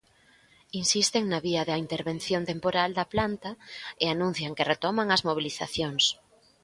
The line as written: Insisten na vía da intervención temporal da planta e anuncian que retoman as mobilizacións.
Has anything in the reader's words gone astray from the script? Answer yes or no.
no